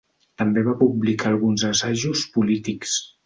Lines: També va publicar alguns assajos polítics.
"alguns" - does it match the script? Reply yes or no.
yes